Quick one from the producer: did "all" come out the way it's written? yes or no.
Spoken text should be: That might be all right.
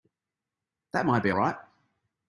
no